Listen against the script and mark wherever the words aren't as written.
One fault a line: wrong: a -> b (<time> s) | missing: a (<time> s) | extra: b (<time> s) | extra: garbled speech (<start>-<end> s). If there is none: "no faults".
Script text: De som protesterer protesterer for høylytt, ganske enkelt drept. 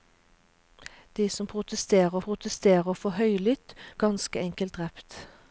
no faults